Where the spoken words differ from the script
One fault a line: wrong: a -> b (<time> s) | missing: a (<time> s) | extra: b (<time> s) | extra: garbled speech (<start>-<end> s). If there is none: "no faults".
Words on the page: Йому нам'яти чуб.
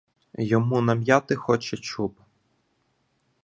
extra: хоче (1.4 s)